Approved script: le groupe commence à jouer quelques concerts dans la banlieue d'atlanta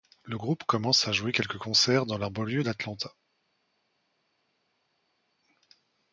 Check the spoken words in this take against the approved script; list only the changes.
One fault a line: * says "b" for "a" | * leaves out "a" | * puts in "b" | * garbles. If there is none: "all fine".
all fine